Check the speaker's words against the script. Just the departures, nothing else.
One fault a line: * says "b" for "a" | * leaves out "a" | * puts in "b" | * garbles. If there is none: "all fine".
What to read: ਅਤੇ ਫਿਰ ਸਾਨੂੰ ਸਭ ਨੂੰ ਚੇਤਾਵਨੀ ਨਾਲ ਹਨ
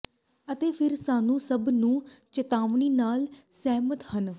* puts in "ਸਹਿਮਤ"